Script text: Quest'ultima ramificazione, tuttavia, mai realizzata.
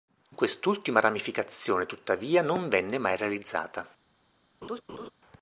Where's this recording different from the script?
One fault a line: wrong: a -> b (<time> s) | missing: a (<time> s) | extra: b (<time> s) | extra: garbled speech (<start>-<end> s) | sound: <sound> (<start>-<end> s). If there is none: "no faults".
extra: non venne (2.4 s)
sound: laugh (4.6-5.1 s)